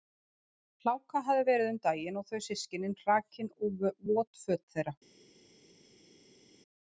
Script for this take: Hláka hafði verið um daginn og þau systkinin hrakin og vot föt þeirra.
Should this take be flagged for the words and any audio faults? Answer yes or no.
no